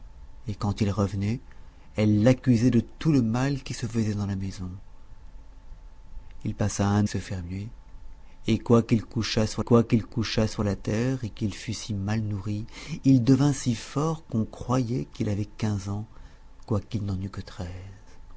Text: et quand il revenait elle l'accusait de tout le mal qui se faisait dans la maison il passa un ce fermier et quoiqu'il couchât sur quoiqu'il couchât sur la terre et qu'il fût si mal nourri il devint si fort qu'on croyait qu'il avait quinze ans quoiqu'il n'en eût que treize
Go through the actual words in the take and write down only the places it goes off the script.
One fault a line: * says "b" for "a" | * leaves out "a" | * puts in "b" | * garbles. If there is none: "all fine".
all fine